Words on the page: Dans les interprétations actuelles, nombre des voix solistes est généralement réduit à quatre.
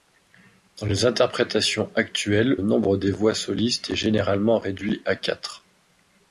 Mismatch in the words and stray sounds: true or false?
false